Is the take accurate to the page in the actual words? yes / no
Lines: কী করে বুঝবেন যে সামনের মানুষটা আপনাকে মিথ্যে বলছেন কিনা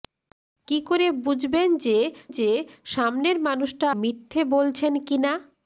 no